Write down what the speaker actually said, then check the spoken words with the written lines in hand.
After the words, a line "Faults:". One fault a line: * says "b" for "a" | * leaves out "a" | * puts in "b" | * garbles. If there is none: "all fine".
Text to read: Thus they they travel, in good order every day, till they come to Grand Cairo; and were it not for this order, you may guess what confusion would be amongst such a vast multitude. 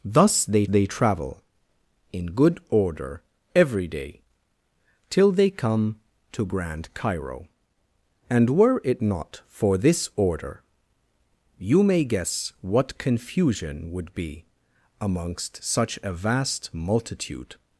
Thus they they travel, in good order every day, till they come to Grand Cairo; and were it not for this order, you may guess what confusion would be amongst such a vast multitude.
Faults:
all fine